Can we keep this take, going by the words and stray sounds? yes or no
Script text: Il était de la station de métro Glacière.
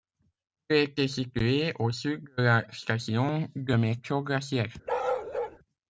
no